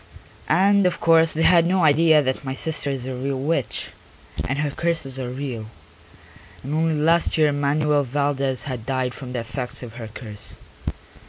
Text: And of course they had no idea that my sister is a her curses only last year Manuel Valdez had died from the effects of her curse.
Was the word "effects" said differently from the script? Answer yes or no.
no